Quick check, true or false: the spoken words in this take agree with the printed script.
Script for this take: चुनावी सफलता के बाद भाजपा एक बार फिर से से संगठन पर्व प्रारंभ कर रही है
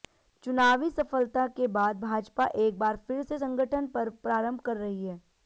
false